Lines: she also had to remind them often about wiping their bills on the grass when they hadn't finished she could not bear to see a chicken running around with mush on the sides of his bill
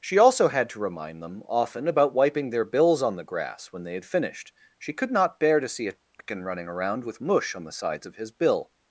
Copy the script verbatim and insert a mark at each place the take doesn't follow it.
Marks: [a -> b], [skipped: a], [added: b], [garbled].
she also had to remind them often about wiping their bills on the grass when they [hadn't -> had] finished she could not bear to see a chicken running around with mush on the sides of his bill